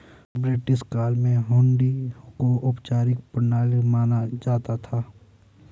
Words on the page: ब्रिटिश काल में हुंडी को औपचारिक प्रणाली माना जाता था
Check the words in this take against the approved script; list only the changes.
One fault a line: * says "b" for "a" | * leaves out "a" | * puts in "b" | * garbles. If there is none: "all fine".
all fine